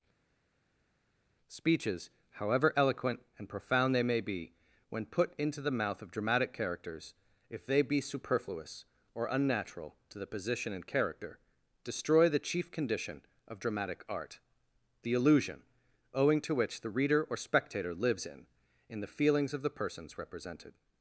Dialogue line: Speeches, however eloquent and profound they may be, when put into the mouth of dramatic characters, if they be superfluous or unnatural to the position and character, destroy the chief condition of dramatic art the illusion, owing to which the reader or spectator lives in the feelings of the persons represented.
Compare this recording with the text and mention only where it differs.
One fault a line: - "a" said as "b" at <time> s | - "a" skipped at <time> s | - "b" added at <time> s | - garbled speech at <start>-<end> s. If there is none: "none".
- "in" added at 18.9 s